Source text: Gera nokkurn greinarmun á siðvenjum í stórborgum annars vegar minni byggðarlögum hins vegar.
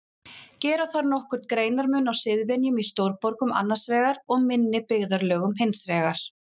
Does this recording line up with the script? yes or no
no